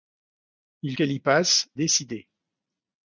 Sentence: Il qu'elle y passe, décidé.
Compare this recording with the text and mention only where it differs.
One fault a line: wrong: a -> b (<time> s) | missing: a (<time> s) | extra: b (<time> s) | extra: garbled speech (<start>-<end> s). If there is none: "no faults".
no faults